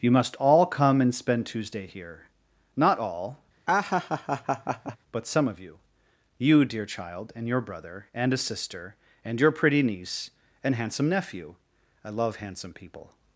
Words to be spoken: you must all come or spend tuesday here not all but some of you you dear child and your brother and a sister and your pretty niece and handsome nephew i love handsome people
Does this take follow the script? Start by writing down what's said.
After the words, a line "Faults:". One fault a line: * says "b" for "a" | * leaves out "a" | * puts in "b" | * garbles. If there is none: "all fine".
you must all come and spend tuesday here not all but some of you you dear child and your brother and a sister and your pretty niece and handsome nephew i love handsome people
Faults:
* says "and" for "or"